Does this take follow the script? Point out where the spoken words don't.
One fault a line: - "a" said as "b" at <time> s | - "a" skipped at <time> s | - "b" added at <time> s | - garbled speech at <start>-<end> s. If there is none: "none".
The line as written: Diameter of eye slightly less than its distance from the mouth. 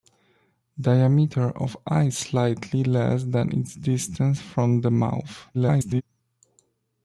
- garbled speech at 5.5-6.0 s